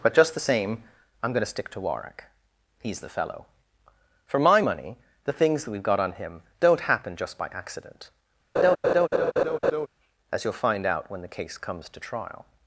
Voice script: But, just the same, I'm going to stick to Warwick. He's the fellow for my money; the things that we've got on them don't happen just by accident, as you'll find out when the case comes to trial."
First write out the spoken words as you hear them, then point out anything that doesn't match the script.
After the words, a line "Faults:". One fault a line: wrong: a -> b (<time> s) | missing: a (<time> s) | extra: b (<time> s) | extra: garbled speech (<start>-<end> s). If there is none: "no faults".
But, just the same, I'm going to stick to Warwick. He's the fellow for my money; the things that we've got on him don't happen just by accident, as you'll find out when the case comes to trial."
Faults:
wrong: them -> him (6.1 s)